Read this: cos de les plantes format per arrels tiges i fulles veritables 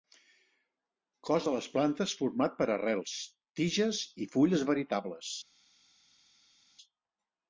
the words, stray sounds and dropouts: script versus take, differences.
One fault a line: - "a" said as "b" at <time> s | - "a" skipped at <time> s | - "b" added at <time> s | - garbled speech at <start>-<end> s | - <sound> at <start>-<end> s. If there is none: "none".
none